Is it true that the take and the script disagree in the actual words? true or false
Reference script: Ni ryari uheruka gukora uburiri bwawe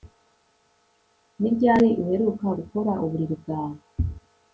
false